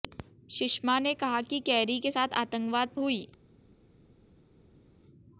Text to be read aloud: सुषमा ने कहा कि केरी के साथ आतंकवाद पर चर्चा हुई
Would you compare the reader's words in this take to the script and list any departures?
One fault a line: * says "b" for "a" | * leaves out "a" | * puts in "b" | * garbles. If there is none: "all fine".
* leaves out "पर चर्चा"